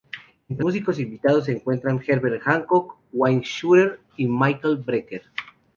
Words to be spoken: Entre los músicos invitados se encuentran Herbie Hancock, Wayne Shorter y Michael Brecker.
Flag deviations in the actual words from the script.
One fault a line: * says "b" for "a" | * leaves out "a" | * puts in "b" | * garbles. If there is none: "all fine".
* leaves out "los"